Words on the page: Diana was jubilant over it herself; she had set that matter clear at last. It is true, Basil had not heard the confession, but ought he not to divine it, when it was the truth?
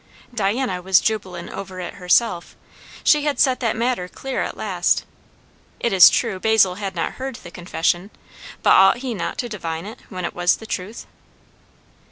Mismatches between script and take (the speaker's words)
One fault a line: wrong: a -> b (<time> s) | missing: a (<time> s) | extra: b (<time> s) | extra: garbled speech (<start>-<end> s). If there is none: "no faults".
no faults